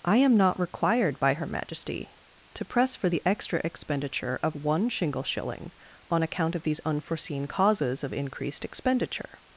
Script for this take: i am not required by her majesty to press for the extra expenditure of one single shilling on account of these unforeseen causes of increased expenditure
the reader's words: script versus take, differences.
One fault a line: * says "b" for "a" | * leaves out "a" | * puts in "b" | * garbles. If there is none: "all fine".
* says "shingle" for "single"